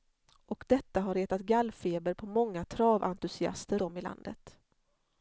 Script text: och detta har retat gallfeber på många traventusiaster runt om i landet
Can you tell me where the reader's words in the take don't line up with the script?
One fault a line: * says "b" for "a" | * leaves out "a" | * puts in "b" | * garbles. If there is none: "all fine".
* leaves out "runt"